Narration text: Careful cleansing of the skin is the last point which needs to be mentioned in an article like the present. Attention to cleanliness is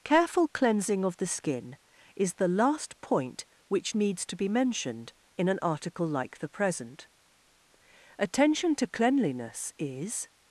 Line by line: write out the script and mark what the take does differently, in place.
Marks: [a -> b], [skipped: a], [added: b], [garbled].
Careful cleansing of the skin is the last point which needs to be mentioned in an article like the present. Attention to cleanliness is